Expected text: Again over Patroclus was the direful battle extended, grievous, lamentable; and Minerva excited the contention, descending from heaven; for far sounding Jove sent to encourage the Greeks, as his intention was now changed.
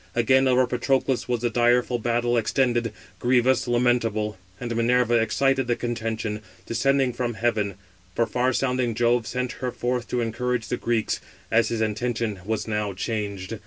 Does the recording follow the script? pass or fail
fail